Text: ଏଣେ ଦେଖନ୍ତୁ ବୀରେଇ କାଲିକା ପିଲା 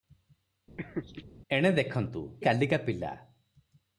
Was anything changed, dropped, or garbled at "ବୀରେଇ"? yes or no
yes